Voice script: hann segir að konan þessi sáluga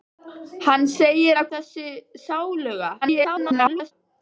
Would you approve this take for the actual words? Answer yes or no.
no